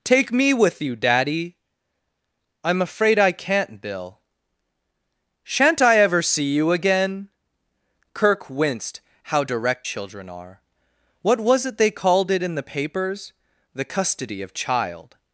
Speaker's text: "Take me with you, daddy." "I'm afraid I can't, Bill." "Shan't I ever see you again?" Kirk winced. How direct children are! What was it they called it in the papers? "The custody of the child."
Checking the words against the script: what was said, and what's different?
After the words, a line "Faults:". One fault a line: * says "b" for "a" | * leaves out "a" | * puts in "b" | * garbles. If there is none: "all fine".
"Take me with you, daddy." "I'm afraid I can't, Bill." "Shan't I ever see you again?" Kirk winced. How direct children are! What was it they called it in the papers? "The custody of child."
Faults:
* leaves out "the"